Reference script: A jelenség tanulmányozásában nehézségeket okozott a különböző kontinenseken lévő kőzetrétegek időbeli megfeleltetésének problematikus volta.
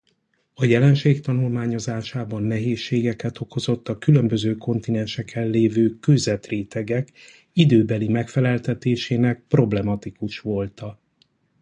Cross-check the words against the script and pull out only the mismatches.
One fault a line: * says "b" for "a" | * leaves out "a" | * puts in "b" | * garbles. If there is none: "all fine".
all fine